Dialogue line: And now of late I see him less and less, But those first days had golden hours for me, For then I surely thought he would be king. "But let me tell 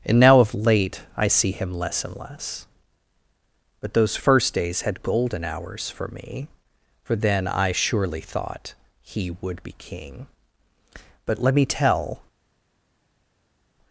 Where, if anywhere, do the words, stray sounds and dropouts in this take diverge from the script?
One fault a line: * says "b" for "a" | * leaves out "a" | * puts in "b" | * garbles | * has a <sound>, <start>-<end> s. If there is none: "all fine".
all fine